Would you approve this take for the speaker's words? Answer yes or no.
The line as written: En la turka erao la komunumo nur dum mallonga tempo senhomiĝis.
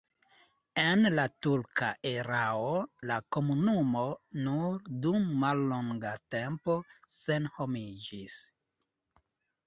yes